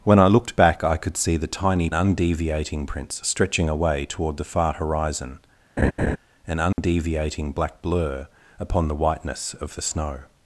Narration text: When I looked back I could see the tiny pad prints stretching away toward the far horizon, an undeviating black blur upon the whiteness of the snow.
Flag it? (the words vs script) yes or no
yes